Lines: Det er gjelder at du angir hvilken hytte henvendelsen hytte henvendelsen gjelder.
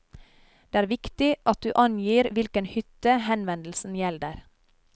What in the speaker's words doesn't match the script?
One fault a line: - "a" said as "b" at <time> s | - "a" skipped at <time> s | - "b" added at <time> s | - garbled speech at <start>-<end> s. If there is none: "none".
- "gjelder" said as "viktig" at 0.9 s
- "hytte henvendelsen" skipped at 4.0 s